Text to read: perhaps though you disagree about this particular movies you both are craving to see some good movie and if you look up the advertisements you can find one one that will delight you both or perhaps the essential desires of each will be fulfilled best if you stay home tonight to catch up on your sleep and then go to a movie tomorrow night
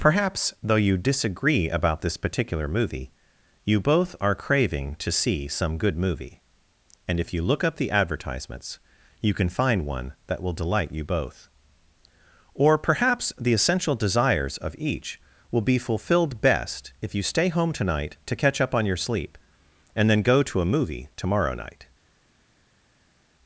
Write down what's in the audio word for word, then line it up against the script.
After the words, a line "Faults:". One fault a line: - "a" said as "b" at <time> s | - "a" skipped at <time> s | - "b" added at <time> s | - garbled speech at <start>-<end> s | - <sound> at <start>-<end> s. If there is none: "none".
perhaps though you disagree about this particular movie you both are craving to see some good movie and if you look up the advertisements you can find one that will delight you both or perhaps the essential desires of each will be fulfilled best if you stay home tonight to catch up on your sleep and then go to a movie tomorrow night
Faults:
- "movies" said as "movie" at 2.7 s
- "one" skipped at 10.1 s